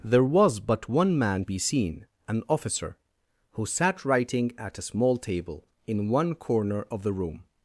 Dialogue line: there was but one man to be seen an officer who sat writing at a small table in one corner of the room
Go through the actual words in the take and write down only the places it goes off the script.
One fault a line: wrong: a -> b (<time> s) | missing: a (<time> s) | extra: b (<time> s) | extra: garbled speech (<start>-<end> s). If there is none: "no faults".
missing: to (1.4 s)